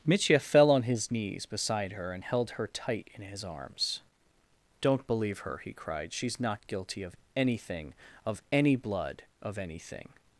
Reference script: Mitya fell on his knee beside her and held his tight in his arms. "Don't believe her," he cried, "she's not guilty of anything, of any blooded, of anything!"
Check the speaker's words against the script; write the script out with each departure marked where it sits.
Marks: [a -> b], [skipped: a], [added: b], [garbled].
Mitya fell on his [knee -> knees] beside her and held [his -> her] tight in his arms. "Don't believe her," he cried, "she's not guilty of anything, of any [blooded, -> blood] of anything!"